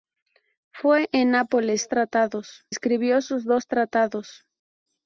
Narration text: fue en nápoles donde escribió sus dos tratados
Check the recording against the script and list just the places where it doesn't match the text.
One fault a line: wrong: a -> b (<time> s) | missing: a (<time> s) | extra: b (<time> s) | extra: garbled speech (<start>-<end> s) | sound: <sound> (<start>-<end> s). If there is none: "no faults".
wrong: donde -> tratados (1.8 s)